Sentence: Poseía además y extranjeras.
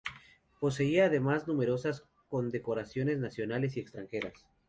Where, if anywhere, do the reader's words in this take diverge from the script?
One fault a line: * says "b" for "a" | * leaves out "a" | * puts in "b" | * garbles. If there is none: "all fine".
* puts in "numerosas condecoraciones nacionales"